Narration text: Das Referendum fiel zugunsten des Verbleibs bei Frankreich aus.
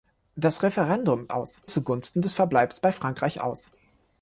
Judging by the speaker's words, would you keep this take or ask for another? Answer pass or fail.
fail